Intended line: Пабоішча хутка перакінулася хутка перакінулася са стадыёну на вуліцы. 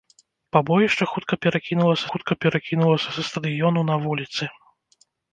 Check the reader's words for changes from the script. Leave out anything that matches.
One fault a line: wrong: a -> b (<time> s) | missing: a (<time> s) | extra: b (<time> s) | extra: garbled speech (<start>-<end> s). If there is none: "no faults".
no faults